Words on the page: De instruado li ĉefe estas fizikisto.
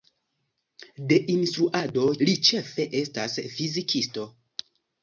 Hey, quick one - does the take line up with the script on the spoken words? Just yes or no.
yes